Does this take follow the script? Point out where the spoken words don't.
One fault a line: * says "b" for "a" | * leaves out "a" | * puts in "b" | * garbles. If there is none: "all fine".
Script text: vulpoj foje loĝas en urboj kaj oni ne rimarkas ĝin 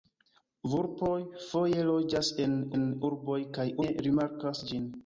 * puts in "en"
* leaves out "oni"